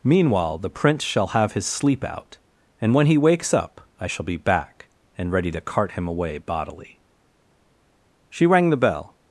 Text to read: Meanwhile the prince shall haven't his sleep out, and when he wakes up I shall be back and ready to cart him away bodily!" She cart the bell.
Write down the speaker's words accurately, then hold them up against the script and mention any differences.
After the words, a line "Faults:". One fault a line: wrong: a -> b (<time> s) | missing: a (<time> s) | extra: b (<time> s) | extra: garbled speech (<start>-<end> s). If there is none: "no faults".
Meanwhile the prince shall have his sleep out, and when he wakes up I shall be back and ready to cart him away bodily!" She rang the bell.
Faults:
wrong: haven't -> have (1.3 s)
wrong: cart -> rang (8.5 s)